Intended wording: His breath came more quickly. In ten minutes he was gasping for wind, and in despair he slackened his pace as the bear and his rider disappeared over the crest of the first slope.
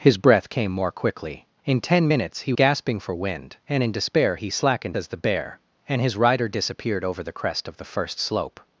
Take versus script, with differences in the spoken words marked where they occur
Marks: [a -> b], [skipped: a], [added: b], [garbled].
His breath came more quickly. In ten minutes he [skipped: was] gasping for wind, and in despair he slackened [skipped: his pace] as the bear and his rider disappeared over the crest of the first slope.